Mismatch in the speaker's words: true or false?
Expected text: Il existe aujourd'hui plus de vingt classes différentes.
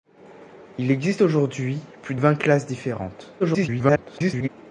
true